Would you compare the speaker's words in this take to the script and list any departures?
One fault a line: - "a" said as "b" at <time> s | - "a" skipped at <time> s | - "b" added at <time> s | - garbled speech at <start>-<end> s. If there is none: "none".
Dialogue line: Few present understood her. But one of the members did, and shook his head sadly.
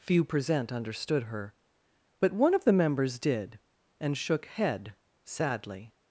- "his" skipped at 4.5 s